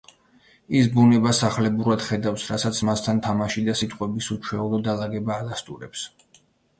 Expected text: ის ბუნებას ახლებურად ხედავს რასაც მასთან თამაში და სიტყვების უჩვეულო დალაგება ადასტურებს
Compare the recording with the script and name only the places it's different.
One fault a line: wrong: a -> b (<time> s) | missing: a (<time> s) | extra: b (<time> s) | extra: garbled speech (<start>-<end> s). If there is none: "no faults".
no faults